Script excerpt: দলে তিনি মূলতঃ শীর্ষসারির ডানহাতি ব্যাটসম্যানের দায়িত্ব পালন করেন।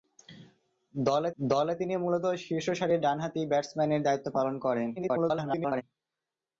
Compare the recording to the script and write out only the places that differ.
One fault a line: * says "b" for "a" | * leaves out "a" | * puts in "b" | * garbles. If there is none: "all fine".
* puts in "দলে"
* garbles